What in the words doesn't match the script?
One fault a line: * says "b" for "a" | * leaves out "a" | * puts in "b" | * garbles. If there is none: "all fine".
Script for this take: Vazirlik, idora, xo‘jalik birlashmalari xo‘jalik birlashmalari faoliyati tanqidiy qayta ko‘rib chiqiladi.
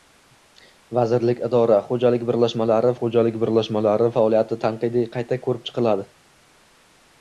all fine